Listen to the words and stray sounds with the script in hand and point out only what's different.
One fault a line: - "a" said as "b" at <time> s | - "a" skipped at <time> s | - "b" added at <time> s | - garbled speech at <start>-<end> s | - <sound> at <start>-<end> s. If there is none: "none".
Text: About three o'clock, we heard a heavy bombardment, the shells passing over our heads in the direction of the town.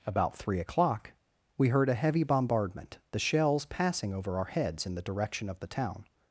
none